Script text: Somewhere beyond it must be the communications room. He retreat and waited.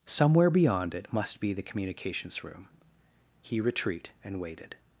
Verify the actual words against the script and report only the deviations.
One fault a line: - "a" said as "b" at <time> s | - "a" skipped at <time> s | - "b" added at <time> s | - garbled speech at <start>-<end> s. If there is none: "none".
none